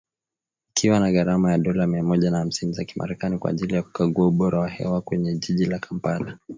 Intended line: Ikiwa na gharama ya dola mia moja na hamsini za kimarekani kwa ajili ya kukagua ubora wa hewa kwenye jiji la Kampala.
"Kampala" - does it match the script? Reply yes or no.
yes